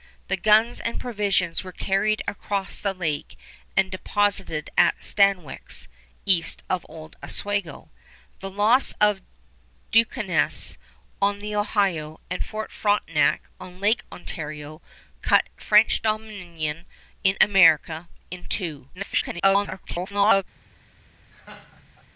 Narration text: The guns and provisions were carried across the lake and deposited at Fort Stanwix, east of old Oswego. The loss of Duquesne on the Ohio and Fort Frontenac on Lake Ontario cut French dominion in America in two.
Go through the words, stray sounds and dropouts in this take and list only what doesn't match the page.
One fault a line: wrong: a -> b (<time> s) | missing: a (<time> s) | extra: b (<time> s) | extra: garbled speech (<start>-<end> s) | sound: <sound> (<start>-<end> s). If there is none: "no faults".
missing: Fort (5.0 s)
extra: garbled speech (18.9-20.4 s)
sound: laugh (21.3-22.1 s)